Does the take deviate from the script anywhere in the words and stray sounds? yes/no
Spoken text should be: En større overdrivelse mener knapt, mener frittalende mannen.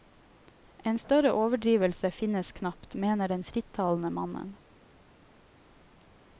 yes